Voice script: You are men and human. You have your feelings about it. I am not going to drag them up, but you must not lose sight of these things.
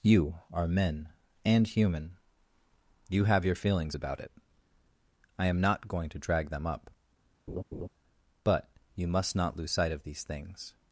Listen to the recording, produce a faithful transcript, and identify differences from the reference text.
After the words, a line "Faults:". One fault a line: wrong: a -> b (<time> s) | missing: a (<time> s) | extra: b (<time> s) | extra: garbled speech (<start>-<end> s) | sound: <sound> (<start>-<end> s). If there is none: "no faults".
You are men and human. You have your feelings about it. I am not going to drag them up, but you must not lose sight of these things.
Faults:
sound: laugh (7.5-7.9 s)